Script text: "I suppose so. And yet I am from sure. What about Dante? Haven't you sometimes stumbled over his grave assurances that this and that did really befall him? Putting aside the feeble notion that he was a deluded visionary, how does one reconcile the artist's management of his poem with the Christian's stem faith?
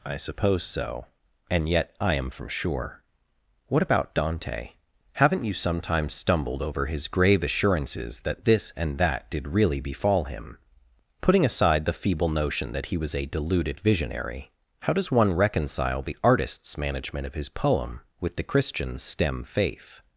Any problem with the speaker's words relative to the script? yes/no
no